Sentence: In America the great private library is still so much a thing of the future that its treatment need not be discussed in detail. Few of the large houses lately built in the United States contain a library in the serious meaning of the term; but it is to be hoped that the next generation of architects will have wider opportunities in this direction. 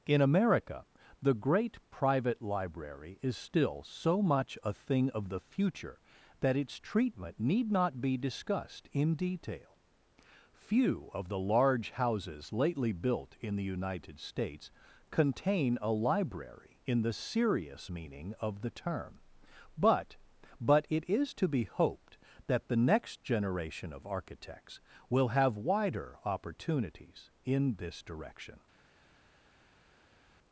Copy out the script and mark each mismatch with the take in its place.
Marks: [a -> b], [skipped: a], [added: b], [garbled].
In America the great private library is still so much a thing of the future that its treatment need not be discussed in detail. Few of the large houses lately built in the United States contain a library in the serious meaning of the term; but [added: but] it is to be hoped that the next generation of architects will have wider opportunities in this direction.